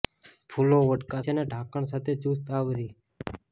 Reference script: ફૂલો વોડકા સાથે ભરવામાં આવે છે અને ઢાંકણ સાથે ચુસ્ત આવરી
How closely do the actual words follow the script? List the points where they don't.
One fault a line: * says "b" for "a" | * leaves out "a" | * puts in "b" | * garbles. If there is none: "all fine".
* leaves out "સાથે ભરવામાં આવે"